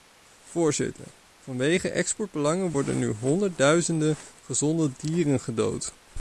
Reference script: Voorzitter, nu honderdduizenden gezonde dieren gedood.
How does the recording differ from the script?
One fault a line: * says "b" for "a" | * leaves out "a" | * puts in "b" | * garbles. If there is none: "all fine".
* puts in "vanwege exportbelangen worden"